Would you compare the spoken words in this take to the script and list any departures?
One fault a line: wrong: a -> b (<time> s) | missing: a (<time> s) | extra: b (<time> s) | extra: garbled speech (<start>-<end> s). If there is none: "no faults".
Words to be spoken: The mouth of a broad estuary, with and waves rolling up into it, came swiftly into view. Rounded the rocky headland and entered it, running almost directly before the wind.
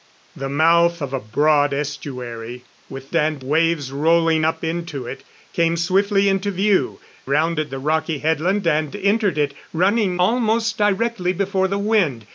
no faults